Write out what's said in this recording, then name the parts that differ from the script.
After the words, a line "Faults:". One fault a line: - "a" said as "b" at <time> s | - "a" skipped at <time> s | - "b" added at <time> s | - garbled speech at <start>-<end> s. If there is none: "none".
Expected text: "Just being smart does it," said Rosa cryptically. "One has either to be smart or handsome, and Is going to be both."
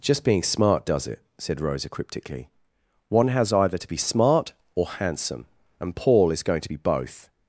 "Just being smart does it," said Rosa cryptically. "One has either to be smart or handsome, and Paul is going to be both."
Faults:
- "Paul" added at 6.0 s